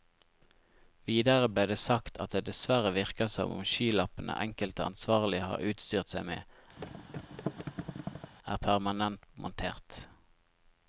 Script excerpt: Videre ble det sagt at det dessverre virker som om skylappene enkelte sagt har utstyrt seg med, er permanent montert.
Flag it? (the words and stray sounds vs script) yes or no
yes